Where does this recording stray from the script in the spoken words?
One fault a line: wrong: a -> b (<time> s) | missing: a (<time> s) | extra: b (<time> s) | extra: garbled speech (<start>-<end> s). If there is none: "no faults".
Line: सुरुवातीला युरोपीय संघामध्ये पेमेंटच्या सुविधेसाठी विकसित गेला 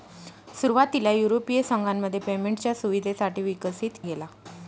no faults